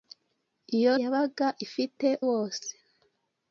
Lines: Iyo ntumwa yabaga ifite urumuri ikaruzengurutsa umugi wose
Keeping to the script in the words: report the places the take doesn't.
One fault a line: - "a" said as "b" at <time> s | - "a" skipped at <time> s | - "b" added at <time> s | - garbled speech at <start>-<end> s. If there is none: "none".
- "ntumwa" skipped at 0.9 s
- "urumuri ikaruzengurutsa umugi" skipped at 2.1 s